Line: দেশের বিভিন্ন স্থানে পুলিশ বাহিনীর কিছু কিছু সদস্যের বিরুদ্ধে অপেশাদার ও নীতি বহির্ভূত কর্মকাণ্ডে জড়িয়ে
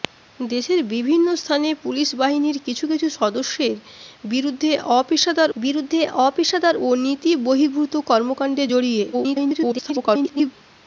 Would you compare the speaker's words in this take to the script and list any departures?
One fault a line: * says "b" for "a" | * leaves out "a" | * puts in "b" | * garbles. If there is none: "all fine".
* puts in "বিরুদ্ধে অপেশাদার"
* garbles